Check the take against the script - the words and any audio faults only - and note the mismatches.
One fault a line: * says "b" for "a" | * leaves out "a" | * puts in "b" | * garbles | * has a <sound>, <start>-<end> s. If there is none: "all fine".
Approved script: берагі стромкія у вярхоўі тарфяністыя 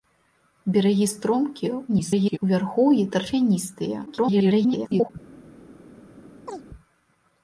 * garbles
* garbles
* has a chirp, 6.5-6.6 s